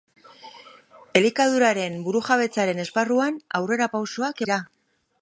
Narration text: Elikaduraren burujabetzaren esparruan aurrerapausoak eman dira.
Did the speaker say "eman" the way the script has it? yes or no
no